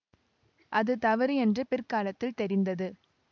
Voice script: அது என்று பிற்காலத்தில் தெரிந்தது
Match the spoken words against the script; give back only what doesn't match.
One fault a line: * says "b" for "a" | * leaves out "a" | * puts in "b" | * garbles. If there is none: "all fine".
* puts in "தவறு"